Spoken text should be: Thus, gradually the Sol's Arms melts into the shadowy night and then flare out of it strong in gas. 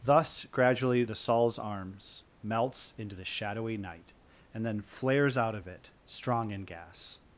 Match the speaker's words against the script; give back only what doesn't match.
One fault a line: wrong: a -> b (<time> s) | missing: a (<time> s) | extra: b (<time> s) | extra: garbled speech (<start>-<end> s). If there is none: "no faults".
wrong: flare -> flares (4.8 s)